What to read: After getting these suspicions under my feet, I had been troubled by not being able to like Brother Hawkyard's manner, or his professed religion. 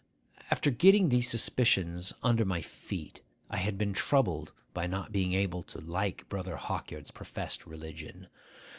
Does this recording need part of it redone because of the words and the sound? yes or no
yes